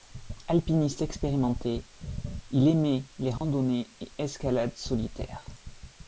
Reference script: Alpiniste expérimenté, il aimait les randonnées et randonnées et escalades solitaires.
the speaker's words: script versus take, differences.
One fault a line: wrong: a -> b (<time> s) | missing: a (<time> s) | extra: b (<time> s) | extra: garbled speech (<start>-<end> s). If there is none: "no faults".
missing: randonnées et (4.1 s)